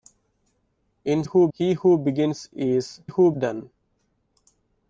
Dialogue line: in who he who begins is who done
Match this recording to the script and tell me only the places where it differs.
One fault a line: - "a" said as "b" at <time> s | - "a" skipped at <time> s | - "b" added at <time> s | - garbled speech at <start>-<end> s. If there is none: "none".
none